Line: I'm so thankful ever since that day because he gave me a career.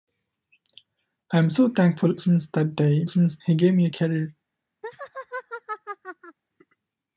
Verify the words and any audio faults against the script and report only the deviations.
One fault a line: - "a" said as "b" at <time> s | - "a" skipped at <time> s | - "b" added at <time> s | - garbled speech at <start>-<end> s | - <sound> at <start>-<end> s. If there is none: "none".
- "ever" skipped at 2.1 s
- "because" said as "since" at 3.1 s
- laugh at 4.8-6.4 s